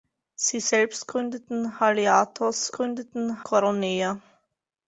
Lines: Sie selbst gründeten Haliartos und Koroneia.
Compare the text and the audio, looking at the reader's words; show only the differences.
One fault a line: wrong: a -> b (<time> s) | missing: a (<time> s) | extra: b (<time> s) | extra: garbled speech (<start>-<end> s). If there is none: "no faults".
wrong: und -> gründeten (2.7 s)